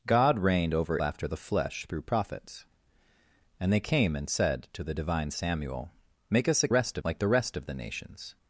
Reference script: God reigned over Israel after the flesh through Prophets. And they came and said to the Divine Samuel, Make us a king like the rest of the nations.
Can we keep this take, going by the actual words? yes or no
no